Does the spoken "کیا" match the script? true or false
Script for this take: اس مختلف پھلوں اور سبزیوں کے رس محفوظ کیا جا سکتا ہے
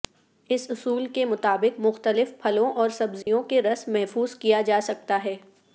true